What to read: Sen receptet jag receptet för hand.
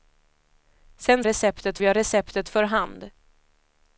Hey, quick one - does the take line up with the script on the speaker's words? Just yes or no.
yes